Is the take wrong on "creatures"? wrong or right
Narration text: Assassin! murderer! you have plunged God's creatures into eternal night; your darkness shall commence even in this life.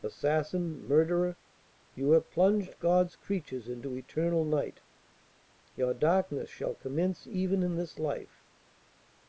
right